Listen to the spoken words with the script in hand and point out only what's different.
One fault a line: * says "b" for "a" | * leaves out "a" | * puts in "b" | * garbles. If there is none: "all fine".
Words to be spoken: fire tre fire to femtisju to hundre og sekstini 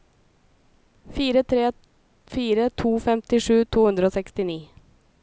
all fine